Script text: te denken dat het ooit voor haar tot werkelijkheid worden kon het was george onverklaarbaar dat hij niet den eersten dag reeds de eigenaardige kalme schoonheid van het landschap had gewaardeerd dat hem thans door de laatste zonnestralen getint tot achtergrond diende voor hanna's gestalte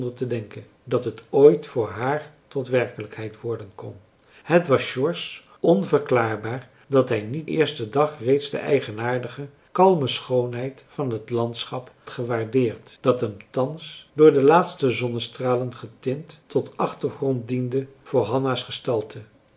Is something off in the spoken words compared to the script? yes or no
yes